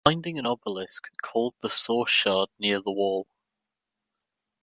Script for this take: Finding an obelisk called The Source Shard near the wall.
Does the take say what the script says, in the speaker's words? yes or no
yes